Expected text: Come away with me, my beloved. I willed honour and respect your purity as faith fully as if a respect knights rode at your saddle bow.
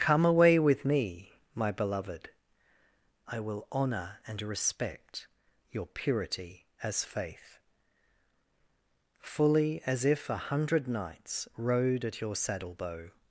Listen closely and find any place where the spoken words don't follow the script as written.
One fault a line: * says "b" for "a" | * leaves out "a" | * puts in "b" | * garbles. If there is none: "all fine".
* says "will" for "willed"
* says "hundred" for "respect"